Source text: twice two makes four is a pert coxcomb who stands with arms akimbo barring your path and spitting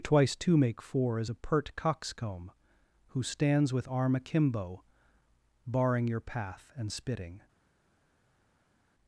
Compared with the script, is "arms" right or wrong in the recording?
wrong